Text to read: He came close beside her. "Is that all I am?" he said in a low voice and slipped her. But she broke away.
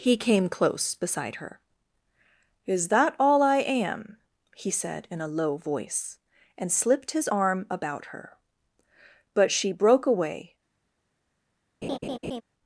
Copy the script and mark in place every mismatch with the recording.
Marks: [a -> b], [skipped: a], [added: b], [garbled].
He came close beside her. "Is that all I am?" he said in a low voice and slipped [added: his arm about] her. But she broke away.